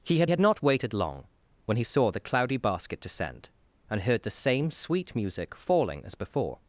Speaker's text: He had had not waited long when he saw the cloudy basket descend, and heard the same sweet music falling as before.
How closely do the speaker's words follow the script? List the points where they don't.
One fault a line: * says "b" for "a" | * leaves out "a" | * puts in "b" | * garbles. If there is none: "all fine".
all fine